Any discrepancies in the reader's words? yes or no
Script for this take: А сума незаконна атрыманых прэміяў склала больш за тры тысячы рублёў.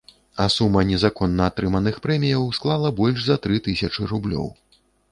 no